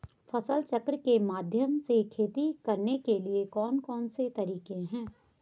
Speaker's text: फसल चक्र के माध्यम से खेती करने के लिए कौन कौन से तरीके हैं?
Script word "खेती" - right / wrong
right